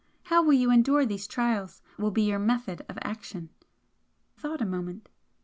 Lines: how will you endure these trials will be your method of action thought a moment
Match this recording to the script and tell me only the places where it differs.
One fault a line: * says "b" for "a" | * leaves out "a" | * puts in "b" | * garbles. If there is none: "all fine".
all fine